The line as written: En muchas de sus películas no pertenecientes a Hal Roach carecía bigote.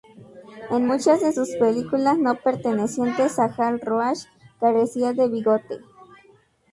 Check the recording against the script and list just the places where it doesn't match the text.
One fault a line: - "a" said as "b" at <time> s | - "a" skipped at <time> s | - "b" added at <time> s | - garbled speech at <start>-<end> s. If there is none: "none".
- "de" added at 5.1 s